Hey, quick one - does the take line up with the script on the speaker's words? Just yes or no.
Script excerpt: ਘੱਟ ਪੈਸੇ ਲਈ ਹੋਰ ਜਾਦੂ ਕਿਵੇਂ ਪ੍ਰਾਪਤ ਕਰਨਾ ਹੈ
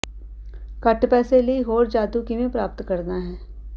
yes